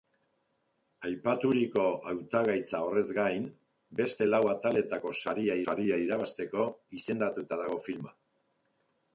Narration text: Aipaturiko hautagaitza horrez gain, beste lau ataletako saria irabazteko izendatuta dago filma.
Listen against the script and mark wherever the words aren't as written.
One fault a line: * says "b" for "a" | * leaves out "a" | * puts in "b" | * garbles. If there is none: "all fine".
* puts in "saria"